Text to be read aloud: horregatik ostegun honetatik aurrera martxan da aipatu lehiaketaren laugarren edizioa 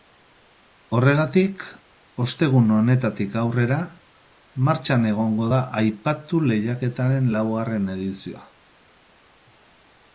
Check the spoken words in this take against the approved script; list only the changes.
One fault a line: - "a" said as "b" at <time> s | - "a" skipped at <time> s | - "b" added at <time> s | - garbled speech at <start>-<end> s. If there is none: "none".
- "egongo" added at 5.1 s